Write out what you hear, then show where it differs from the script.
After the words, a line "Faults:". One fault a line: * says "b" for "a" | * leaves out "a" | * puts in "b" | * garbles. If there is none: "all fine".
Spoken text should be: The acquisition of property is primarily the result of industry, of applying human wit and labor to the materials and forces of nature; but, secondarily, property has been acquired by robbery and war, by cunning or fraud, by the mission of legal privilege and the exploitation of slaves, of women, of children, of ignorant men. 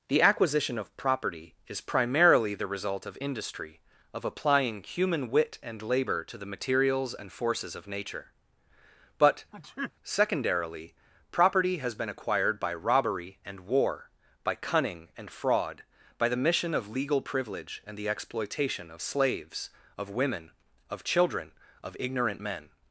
The acquisition of property is primarily the result of industry, of applying human wit and labor to the materials and forces of nature; but, secondarily, property has been acquired by robbery and war, by cunning and fraud, by the mission of legal privilege and the exploitation of slaves, of women, of children, of ignorant men.
Faults:
* says "and" for "or"